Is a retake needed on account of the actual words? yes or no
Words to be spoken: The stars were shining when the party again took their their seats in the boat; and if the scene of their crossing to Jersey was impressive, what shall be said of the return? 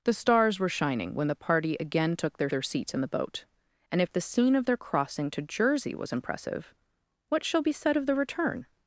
no